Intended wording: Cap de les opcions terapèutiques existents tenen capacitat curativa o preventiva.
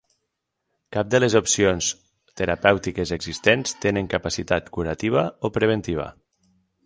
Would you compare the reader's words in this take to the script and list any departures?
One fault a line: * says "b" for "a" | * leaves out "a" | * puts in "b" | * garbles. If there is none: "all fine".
all fine